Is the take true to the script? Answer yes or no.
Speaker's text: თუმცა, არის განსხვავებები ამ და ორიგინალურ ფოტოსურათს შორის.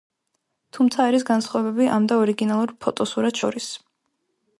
yes